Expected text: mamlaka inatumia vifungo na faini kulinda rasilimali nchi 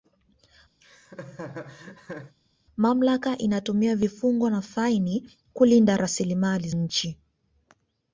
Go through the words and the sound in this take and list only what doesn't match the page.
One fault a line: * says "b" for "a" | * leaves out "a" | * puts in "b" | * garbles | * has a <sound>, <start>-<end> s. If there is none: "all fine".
* has a laugh, 0.8-2.3 s